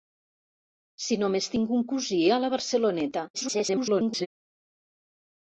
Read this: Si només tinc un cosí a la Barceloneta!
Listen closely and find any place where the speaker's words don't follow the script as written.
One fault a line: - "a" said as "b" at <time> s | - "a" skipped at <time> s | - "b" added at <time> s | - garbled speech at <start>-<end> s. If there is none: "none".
- garbled speech at 3.3-4.3 s